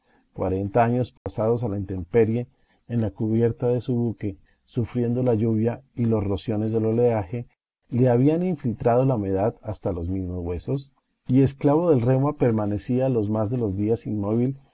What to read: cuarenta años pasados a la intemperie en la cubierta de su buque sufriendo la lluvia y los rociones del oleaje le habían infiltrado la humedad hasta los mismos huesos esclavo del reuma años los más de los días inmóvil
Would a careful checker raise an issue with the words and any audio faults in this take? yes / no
yes